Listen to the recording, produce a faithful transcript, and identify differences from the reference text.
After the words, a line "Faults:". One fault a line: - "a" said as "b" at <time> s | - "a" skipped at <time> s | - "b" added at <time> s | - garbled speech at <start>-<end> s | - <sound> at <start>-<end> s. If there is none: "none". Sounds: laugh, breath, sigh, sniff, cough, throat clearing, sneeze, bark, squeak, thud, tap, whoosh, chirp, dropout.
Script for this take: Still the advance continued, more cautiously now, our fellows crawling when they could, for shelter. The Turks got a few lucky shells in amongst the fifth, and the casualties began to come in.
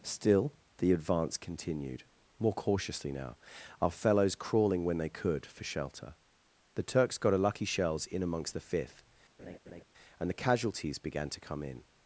Still the advance continued, more cautiously now, our fellows crawling when they could, for shelter. The Turks got a lucky shells in amongst the fifth, and the casualties began to come in.
Faults:
- "few" skipped at 7.4 s
- laugh at 9.4-9.8 s